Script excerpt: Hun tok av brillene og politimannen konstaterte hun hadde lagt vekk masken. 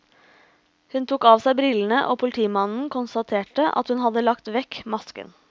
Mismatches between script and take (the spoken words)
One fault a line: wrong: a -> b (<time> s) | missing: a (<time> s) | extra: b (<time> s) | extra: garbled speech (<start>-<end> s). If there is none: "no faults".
extra: seg (1.4 s)
extra: at (3.8 s)